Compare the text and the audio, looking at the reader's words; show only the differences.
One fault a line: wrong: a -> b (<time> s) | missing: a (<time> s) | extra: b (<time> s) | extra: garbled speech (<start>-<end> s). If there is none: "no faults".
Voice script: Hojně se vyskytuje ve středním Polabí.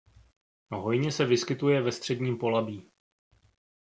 no faults